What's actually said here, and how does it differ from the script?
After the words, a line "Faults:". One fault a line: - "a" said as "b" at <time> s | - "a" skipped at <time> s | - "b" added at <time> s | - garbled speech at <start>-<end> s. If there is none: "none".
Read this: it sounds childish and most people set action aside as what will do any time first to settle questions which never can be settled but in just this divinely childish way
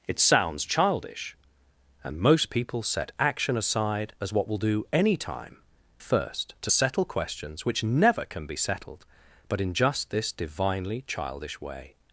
it sounds childish and most people set action aside as what will do any time first to settle questions which never can be settled but in just this divinely childish way
Faults:
none